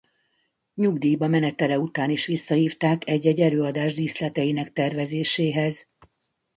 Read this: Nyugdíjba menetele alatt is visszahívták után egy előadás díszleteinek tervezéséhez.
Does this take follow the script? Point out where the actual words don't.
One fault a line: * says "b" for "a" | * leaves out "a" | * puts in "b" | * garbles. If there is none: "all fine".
* says "után" for "alatt"
* says "egy" for "után"